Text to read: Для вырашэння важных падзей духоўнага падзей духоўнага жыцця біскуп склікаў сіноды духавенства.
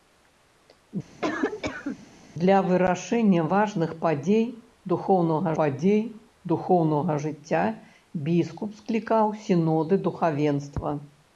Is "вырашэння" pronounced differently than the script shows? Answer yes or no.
no